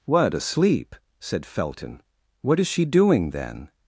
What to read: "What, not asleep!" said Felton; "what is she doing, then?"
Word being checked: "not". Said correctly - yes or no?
no